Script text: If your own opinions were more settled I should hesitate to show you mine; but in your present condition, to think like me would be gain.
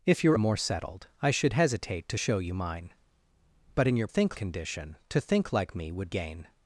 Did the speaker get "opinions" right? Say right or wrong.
wrong